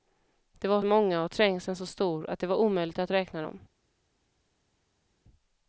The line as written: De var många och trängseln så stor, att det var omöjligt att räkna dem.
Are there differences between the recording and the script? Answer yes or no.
no